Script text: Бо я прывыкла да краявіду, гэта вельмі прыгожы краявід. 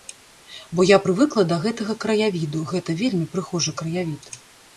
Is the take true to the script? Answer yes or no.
no